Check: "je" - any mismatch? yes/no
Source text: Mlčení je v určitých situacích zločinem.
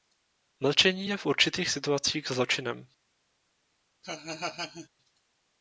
no